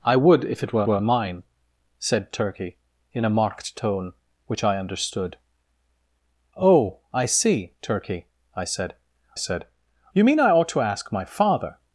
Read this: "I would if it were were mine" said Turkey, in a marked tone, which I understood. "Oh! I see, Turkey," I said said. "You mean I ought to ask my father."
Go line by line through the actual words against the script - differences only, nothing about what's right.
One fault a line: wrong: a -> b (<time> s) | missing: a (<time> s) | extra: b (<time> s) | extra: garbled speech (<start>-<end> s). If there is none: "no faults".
no faults